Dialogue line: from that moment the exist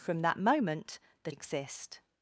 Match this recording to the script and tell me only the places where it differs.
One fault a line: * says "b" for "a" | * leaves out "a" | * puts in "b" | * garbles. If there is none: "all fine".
all fine